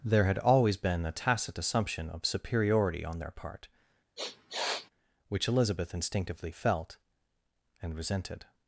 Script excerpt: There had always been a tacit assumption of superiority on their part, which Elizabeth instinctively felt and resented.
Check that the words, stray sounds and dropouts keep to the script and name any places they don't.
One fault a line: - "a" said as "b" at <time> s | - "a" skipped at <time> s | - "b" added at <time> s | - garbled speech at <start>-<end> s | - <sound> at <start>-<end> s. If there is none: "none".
- sniff at 4.2-4.9 s